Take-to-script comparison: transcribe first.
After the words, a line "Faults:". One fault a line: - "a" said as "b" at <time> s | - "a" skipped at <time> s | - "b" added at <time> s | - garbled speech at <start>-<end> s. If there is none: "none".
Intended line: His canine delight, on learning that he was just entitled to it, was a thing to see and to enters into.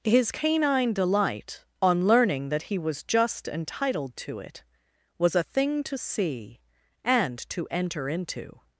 His canine delight, on learning that he was just entitled to it, was a thing to see and to enter into.
Faults:
- "enters" said as "enter" at 7.7 s